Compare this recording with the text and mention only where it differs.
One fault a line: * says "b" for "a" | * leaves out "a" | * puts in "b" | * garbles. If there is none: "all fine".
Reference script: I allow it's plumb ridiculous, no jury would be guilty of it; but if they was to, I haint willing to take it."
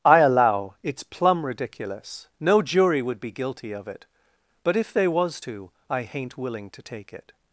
all fine